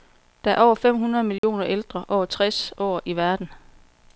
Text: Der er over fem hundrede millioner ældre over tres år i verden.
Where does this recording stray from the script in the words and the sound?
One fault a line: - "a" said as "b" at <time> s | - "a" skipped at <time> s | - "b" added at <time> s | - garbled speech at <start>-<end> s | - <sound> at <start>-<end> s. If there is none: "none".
- dropout at 1.4-1.4 s